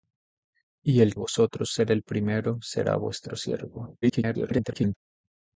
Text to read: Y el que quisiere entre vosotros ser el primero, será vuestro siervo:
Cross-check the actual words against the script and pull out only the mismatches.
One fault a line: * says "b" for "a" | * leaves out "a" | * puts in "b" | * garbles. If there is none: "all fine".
* leaves out "que quisiere entre"
* garbles